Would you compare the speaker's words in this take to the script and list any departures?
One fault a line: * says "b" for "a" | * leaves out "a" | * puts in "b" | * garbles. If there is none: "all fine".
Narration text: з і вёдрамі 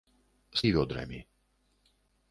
all fine